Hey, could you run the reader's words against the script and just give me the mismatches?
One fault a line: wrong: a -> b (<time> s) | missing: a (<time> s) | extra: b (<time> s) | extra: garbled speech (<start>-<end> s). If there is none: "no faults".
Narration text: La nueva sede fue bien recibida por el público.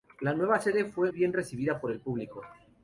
no faults